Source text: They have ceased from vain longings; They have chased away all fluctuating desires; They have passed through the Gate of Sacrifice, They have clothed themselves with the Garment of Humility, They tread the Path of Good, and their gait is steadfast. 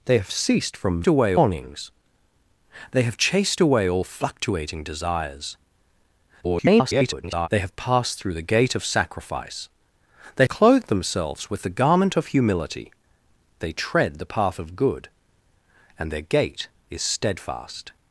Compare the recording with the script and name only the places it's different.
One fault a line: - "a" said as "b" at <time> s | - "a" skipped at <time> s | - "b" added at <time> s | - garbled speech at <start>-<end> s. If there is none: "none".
- "vain" said as "away" at 1.1 s
- garbled speech at 6.4-7.5 s
- "have" skipped at 10.5 s